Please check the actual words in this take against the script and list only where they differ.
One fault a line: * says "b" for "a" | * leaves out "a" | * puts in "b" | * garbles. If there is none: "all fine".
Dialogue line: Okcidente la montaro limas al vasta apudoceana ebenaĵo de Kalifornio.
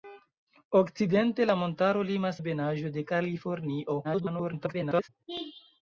* leaves out "al vasta apudoceana"
* garbles